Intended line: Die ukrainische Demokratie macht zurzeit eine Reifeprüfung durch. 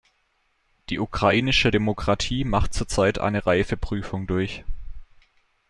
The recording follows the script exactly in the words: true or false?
true